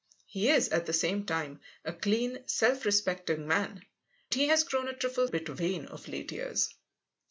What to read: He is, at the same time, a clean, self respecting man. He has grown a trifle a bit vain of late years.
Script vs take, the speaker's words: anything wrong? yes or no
no